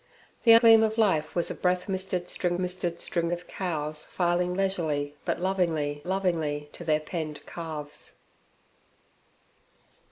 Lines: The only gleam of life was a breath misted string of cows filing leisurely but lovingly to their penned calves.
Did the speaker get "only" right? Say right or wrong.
wrong